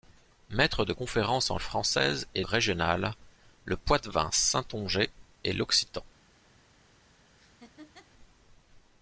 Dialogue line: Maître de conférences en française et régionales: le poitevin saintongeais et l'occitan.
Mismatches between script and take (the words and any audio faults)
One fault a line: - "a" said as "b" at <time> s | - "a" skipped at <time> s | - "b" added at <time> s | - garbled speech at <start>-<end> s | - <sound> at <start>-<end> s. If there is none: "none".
- laugh at 7.4-8.1 s